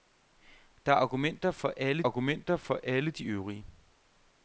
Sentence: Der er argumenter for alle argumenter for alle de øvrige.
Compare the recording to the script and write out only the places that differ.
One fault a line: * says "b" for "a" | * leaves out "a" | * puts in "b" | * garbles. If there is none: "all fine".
all fine